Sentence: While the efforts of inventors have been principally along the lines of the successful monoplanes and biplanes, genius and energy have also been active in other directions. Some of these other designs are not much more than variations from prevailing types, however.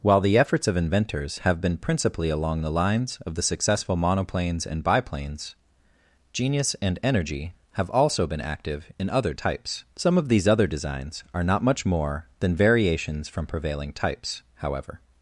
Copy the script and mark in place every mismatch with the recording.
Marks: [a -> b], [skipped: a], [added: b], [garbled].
While the efforts of inventors have been principally along the lines of the successful monoplanes and biplanes, genius and energy have also been active in other [directions. -> types] Some of these other designs are not much more than variations from prevailing types, however.